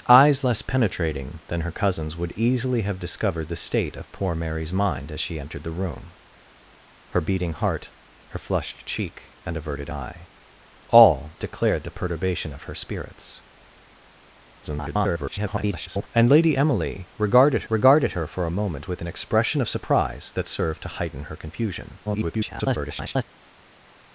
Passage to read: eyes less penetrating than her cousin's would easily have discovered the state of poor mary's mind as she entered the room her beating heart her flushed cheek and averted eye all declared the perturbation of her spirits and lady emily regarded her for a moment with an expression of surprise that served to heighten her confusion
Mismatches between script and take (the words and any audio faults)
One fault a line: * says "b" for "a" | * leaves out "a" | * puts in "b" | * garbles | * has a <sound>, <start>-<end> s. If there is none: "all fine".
* garbles
* puts in "regarded"
* garbles